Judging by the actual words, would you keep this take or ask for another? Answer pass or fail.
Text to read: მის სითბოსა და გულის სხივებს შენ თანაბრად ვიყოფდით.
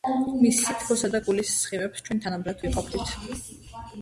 fail